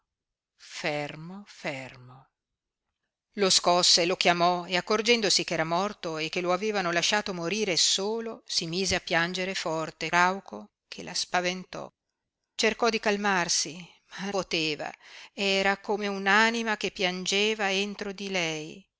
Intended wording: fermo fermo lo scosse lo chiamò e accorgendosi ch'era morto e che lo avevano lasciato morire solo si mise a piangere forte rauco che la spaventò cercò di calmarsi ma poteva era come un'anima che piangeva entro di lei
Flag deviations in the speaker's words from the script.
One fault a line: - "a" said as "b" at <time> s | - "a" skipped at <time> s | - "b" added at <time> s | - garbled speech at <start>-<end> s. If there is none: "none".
none